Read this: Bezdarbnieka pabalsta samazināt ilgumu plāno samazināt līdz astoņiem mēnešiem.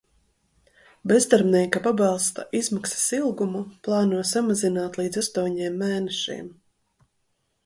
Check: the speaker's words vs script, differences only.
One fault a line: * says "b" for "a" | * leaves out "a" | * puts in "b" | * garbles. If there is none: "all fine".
* says "izmaksas" for "samazināt"